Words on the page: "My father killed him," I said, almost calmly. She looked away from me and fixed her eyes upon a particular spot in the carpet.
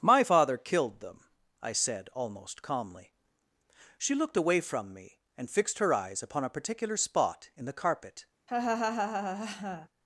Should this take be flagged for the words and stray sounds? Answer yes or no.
yes